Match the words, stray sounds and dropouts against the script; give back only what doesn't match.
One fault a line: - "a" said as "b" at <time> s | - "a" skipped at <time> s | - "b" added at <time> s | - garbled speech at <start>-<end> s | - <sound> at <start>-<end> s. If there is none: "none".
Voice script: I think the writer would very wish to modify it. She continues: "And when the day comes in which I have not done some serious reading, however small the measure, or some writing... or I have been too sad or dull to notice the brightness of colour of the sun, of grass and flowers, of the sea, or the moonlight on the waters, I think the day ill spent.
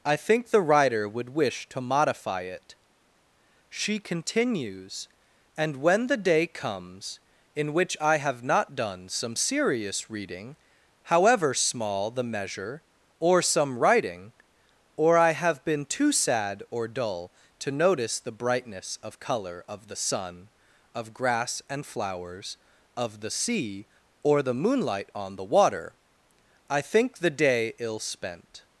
- "very" skipped at 1.3 s
- "waters" said as "water" at 25.5 s